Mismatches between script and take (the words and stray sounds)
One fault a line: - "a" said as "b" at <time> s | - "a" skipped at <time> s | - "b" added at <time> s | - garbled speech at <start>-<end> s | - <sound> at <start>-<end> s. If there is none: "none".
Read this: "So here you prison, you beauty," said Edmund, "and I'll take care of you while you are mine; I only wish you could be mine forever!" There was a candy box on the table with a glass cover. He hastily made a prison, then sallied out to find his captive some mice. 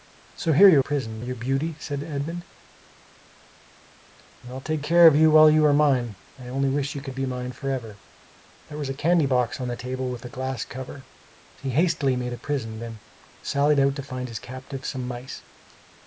none